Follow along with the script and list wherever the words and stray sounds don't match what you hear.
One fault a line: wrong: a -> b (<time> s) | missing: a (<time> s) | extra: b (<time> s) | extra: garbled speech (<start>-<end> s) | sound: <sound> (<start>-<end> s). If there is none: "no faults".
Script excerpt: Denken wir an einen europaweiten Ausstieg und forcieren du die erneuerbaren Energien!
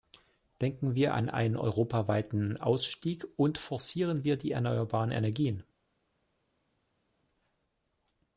wrong: du -> wir (4.2 s)